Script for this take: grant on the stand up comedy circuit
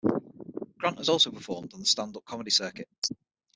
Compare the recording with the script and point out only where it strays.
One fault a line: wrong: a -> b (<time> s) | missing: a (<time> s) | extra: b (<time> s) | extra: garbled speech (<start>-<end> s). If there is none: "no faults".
extra: has also performed (1.0 s)